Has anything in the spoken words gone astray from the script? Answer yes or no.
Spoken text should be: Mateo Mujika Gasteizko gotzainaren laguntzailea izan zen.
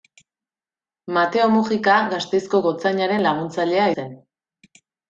yes